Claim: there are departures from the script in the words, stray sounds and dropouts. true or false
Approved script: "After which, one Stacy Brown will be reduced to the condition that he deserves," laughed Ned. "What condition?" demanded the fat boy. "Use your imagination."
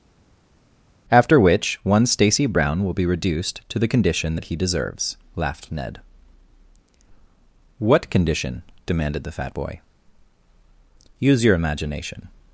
false